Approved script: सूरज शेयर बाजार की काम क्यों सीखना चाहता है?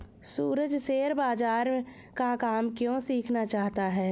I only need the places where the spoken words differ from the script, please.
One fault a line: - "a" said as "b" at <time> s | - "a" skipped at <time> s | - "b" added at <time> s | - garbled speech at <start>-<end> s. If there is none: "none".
- "की" said as "का" at 2.2 s